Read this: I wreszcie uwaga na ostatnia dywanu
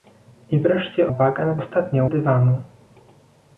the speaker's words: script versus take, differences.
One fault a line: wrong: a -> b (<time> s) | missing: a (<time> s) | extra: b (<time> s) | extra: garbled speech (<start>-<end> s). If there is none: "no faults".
no faults